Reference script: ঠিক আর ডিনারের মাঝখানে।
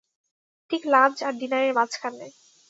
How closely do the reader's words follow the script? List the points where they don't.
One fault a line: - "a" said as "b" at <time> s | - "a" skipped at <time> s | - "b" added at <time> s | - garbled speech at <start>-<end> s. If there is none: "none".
- "লাঞ্চ" added at 0.9 s